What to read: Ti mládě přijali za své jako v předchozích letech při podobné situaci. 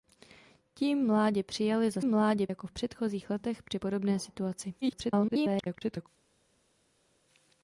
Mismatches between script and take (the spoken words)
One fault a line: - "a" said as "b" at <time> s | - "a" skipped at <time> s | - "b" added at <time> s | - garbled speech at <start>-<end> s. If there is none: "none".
- "své" said as "mládě" at 2.0 s
- garbled speech at 4.8-6.1 s